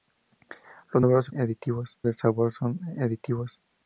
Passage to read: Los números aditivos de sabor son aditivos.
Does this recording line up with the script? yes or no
yes